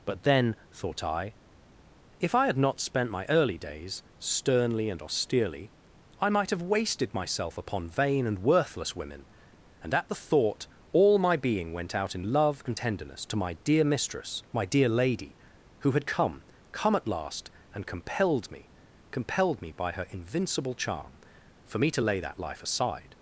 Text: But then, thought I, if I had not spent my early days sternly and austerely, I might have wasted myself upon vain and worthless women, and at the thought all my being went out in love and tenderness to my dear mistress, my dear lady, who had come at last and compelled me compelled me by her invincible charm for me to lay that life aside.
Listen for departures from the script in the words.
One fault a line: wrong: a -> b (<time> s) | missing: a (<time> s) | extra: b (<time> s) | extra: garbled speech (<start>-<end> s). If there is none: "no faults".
extra: come (16.7 s)